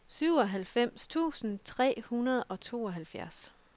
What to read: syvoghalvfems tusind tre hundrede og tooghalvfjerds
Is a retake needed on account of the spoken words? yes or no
no